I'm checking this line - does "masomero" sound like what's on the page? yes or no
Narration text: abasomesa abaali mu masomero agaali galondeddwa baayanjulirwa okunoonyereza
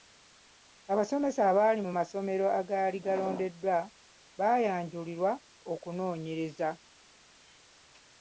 yes